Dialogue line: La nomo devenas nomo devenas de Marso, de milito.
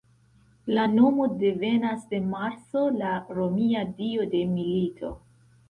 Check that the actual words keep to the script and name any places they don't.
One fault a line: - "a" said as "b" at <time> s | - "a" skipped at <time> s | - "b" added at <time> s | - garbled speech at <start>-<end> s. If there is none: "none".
- "nomo devenas de Marso" said as "de Marso la romia dio" at 2.1 s